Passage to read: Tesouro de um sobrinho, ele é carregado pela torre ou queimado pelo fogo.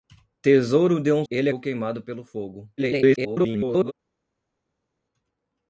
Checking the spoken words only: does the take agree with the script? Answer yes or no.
no